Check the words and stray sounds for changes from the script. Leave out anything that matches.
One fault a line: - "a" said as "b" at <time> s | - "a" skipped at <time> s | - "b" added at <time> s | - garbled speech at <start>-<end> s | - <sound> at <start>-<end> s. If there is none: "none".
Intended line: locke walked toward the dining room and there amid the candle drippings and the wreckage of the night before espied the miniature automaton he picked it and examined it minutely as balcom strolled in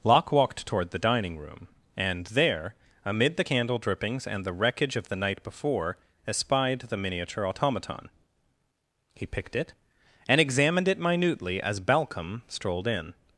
none